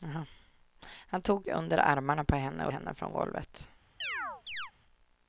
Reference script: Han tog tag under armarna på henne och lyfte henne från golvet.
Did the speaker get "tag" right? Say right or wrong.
wrong